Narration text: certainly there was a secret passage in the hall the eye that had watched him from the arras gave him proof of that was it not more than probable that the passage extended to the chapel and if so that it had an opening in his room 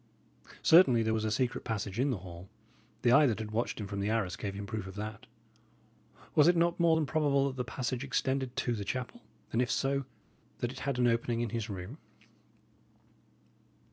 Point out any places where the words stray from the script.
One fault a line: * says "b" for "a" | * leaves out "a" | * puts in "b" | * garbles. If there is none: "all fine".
all fine